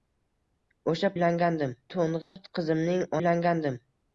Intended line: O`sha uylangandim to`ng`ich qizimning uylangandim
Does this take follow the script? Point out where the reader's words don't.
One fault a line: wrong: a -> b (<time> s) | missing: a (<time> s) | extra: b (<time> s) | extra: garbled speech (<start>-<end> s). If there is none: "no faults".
no faults